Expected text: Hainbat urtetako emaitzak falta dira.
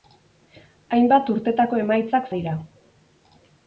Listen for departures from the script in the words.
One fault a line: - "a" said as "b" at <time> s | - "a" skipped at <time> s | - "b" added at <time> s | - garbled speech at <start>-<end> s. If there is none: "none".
- "falta" skipped at 2.3 s